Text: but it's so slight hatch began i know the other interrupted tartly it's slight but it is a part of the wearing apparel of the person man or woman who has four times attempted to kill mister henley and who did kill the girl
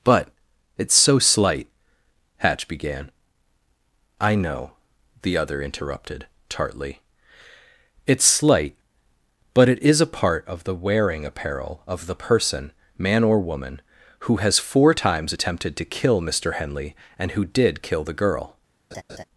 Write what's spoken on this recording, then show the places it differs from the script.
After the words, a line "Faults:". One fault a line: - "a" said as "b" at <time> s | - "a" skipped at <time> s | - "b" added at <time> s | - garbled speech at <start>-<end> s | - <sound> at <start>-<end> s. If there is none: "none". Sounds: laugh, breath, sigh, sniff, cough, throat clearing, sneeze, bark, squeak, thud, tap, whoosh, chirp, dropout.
but it's so slight hatch began i know the other interrupted tartly it's slight but it is a part of the wearing apparel of the person man or woman who has four times attempted to kill mister henley and who did kill the girl
Faults:
- laugh at 18.9-19.2 s